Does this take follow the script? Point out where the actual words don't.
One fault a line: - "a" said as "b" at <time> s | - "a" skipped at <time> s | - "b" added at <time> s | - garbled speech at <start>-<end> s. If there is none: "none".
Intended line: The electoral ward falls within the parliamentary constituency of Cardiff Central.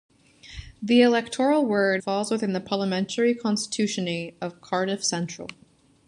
none